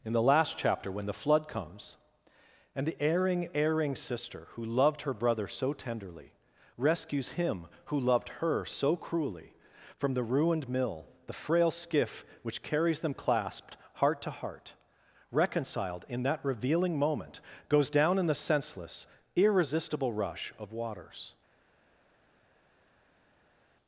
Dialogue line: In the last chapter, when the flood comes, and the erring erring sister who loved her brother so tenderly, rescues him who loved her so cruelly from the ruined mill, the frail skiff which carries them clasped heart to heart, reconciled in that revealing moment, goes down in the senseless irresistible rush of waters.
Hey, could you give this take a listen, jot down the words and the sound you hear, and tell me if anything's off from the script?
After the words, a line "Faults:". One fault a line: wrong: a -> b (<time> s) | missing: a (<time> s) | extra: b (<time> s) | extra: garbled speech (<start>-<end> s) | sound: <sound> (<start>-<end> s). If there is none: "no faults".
In the last chapter, when the flood comes, and the erring erring sister who loved her brother so tenderly, rescues him who loved her so cruelly from the ruined mill, the frail skiff which carries them clasped heart to heart, reconciled in that revealing moment, goes down in the senseless irresistible rush of waters.
Faults:
no faults